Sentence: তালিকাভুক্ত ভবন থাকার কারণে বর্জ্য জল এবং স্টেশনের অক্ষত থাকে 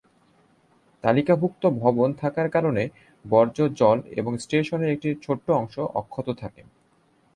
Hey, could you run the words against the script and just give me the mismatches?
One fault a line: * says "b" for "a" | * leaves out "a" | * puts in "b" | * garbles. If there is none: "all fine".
* puts in "একটি ছোট্ট অংশ"